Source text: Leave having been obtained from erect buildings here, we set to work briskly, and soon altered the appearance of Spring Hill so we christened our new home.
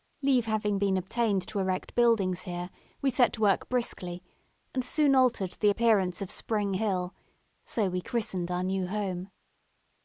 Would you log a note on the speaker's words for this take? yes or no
yes